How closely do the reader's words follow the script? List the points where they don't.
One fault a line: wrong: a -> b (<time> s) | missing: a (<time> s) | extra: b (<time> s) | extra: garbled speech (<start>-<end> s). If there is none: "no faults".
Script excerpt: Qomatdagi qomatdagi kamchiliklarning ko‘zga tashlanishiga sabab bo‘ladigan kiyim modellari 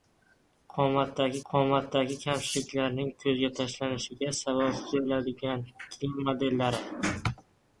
no faults